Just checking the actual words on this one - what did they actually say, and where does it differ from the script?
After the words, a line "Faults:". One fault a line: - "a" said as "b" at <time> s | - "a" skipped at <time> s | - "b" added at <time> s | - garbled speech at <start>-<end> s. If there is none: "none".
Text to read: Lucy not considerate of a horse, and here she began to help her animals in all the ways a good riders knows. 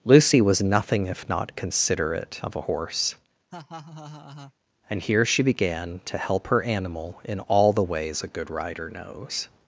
Lucy was nothing if not considerate of a horse, and here she began to help her animal in all the ways a good rider knows.
Faults:
- "was nothing if" added at 0.4 s
- "animals" said as "animal" at 6.6 s
- "riders" said as "rider" at 8.5 s